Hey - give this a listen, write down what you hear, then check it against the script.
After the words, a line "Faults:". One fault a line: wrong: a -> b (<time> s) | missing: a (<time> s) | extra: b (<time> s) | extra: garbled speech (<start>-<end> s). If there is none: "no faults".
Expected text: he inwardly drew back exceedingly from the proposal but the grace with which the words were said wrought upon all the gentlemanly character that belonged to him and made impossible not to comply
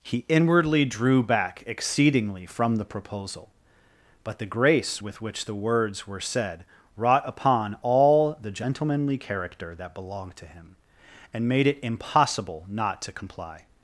he inwardly drew back exceedingly from the proposal but the grace with which the words were said wrought upon all the gentlemanly character that belonged to him and made it impossible not to comply
Faults:
extra: it (11.7 s)